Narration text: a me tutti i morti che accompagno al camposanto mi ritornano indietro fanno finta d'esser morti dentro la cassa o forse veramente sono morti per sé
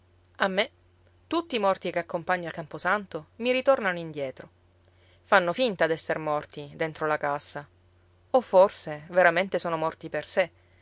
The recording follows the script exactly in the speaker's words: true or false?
true